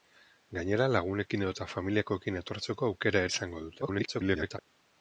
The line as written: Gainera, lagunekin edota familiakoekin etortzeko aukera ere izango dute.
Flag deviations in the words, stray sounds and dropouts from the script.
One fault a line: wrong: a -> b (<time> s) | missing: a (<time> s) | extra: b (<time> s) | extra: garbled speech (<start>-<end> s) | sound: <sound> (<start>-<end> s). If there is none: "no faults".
missing: ere (3.2 s)
extra: garbled speech (3.8-4.6 s)